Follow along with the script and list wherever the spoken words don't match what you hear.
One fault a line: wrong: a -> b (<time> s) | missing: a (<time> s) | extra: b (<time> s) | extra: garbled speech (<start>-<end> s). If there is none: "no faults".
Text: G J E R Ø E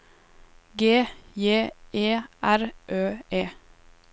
no faults